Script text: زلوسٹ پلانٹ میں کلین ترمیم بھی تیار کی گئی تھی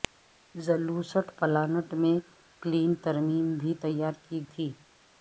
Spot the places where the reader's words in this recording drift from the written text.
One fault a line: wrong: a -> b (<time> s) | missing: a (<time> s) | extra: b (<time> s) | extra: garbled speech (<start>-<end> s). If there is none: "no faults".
missing: گئی (4.4 s)